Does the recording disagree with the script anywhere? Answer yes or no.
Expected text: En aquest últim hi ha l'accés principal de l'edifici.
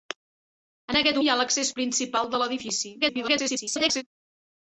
yes